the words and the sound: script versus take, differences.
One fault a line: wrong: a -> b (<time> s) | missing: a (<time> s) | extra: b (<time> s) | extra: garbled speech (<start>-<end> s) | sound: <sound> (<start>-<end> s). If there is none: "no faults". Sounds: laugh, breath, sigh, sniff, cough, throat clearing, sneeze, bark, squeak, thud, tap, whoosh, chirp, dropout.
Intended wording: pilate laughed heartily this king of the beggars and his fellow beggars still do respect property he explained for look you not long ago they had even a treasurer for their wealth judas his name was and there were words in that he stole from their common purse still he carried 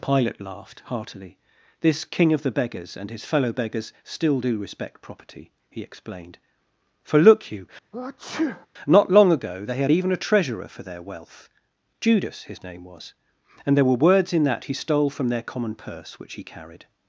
sound: sneeze (7.9-8.7 s)
wrong: still -> which (16.2 s)